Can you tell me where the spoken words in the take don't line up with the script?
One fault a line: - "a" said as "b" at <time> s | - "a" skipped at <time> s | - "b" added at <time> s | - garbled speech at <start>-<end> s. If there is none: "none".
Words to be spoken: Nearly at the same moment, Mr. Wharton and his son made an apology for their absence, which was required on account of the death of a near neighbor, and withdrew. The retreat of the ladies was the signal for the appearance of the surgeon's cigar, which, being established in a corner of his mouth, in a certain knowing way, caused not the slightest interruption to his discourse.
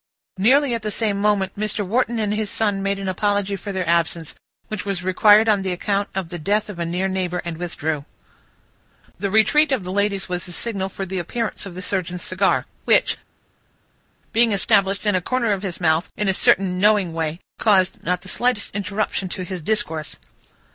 none